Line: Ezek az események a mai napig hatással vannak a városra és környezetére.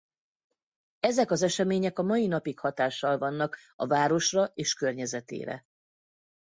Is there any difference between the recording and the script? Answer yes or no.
no